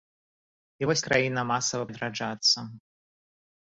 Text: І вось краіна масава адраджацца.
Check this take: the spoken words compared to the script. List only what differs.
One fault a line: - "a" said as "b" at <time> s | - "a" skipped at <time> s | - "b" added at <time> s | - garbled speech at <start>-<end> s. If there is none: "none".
none